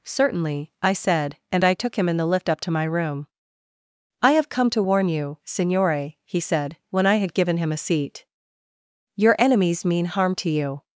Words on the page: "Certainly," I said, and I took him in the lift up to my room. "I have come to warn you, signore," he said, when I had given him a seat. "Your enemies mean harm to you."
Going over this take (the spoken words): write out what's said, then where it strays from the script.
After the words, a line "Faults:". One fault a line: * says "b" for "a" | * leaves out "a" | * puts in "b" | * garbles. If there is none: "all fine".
"Certainly," I said, and I took him in the lift up to my room. "I have come to warn you, signore," he said, when I had given him a seat. "Your enemies mean harm to you."
Faults:
all fine